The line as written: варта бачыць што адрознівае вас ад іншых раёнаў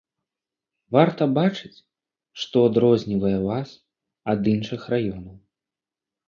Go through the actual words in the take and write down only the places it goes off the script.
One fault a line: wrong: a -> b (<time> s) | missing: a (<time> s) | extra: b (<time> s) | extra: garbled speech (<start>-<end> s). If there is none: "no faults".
no faults